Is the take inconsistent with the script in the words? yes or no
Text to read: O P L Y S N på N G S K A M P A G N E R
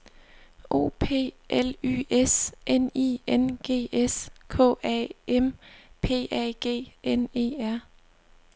yes